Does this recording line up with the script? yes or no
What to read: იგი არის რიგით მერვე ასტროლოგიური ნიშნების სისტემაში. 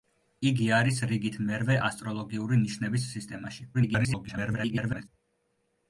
no